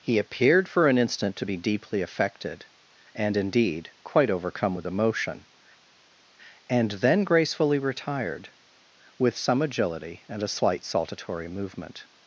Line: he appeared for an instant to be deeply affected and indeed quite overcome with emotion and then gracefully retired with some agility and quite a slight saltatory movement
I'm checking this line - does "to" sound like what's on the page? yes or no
yes